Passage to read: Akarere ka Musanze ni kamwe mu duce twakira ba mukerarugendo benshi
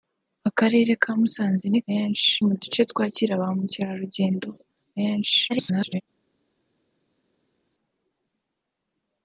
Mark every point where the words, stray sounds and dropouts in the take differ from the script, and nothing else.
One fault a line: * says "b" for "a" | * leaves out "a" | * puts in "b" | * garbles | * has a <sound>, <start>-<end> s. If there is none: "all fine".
* says "benshi" for "kamwe"
* garbles